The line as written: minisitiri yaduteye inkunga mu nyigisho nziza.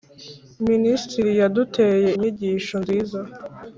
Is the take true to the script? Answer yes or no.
no